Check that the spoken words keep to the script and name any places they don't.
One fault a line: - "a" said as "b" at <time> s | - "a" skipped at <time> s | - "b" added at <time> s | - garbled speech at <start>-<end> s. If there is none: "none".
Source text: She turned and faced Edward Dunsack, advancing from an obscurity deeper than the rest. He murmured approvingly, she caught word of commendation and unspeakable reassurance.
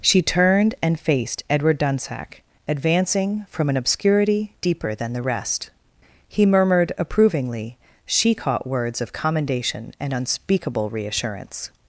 - "word" said as "words" at 8.7 s